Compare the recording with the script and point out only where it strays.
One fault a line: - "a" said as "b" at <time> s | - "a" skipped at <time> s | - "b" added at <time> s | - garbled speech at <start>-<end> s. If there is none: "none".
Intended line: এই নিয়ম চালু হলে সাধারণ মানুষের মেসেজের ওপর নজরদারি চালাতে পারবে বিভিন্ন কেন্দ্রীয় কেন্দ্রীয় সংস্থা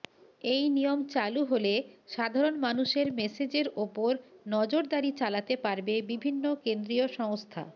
- "কেন্দ্রীয়" skipped at 7.1 s